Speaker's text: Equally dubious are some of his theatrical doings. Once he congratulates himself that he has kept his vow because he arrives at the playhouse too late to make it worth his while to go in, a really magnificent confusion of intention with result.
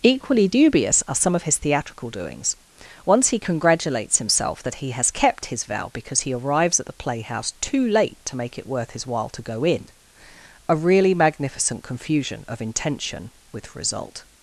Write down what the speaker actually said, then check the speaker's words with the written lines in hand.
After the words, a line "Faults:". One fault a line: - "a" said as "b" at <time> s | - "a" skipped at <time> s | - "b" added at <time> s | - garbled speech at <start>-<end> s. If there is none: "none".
Equally dubious are some of his theatrical doings. Once he congratulates himself that he has kept his vow because he arrives at the playhouse too late to make it worth his while to go in, a really magnificent confusion of intention with result.
Faults:
none